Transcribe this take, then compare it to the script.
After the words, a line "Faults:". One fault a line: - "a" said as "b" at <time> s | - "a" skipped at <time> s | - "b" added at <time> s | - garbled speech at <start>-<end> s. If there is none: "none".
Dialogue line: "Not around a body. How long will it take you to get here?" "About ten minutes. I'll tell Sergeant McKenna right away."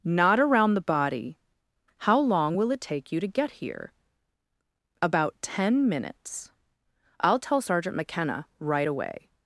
"Not around the body. How long will it take you to get here?" "About ten minutes. I'll tell Sergeant McKenna right away."
Faults:
- "a" said as "the" at 0.7 s